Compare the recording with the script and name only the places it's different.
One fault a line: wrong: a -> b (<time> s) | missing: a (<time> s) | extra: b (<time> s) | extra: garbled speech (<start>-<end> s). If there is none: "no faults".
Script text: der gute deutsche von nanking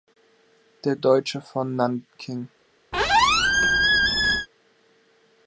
missing: gute (0.9 s)